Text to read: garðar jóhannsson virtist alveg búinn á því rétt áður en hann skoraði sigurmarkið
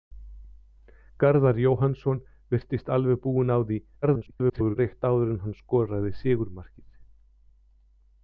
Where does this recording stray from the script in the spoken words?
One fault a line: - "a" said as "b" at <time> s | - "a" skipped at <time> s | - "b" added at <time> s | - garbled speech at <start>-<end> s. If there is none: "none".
- garbled speech at 4.0-4.8 s